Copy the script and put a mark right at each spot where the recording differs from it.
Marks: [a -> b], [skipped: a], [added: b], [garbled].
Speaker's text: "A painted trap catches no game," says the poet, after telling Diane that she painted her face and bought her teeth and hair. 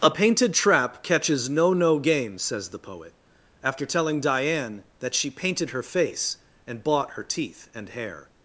"A painted trap catches no [added: no] game," says the poet, after telling Diane that she painted her face and bought her teeth and hair.